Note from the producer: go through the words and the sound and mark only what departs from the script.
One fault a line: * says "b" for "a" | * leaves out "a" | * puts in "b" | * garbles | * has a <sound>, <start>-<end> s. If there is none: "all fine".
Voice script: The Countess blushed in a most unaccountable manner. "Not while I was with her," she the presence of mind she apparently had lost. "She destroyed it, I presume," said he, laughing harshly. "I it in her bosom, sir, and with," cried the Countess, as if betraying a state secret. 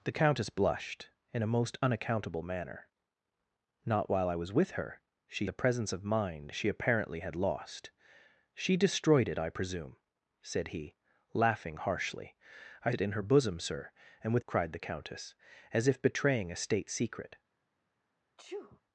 * has a sneeze, 18.4-18.8 s